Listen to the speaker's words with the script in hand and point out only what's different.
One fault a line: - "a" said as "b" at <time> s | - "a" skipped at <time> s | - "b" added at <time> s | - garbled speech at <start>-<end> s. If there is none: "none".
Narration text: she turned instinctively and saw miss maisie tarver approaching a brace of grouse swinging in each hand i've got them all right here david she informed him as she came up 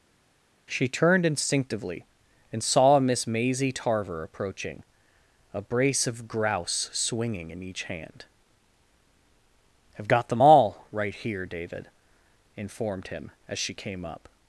- "she" skipped at 11.9 s